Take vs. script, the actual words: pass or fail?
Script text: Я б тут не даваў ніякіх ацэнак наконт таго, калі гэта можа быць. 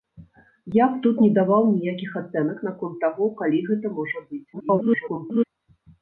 fail